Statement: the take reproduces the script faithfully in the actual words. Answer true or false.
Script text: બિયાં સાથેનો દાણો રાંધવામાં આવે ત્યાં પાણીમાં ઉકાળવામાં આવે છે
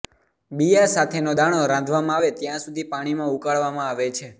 false